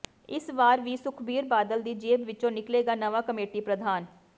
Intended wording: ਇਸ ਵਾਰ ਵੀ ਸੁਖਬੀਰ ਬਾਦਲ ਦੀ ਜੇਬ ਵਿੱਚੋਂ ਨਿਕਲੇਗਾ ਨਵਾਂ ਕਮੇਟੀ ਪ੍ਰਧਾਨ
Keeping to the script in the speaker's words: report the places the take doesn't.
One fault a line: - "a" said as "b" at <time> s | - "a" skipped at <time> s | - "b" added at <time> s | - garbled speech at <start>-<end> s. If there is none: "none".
none